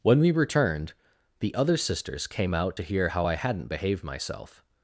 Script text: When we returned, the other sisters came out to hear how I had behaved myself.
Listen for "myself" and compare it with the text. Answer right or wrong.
right